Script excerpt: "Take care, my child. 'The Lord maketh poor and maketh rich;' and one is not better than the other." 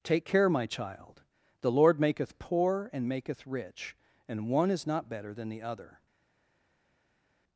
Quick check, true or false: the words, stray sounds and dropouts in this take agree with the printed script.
true